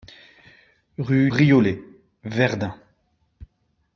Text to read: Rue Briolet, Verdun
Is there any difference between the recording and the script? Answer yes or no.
no